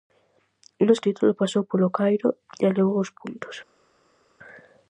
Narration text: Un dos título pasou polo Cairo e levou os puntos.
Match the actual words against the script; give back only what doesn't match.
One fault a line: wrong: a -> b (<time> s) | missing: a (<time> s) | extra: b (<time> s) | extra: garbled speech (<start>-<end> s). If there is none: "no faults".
no faults